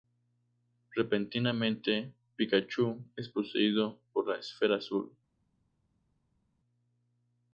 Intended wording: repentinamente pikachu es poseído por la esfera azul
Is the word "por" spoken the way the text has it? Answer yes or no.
yes